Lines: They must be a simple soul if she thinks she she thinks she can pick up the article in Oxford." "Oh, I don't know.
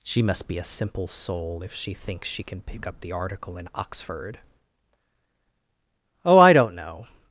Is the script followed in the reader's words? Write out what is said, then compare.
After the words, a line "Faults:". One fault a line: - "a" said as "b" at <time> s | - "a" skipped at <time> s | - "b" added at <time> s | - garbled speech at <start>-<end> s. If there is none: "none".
She must be a simple soul if she thinks she can pick up the article in Oxford." "Oh, I don't know.
Faults:
- "They" said as "She" at 0.0 s
- "she thinks she" skipped at 2.4 s